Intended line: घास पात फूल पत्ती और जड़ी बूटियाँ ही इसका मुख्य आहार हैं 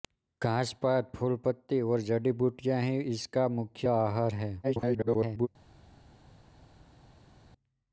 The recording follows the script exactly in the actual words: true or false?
false